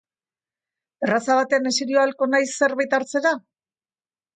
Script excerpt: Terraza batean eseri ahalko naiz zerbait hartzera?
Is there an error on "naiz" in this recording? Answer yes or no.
no